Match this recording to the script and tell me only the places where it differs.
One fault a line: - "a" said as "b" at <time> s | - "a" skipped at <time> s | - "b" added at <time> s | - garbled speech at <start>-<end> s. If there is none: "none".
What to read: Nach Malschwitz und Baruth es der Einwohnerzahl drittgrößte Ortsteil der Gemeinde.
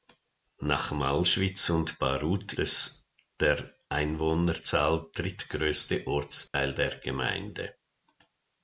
none